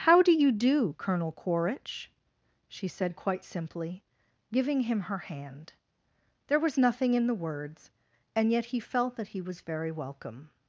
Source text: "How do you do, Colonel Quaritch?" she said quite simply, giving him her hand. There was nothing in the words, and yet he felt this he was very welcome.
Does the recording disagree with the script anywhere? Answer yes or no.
yes